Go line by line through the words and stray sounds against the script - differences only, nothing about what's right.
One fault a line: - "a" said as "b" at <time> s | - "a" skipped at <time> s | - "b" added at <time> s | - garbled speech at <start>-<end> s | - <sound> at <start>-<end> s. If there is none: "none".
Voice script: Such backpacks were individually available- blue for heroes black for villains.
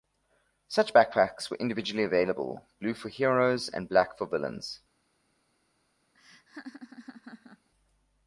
- "and" added at 3.7 s
- laugh at 6.1-7.7 s